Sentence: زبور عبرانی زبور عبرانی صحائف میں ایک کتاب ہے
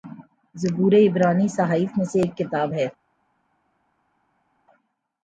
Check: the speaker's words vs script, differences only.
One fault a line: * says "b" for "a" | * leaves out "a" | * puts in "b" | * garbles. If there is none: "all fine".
* leaves out "زبور عبرانی"
* puts in "سے"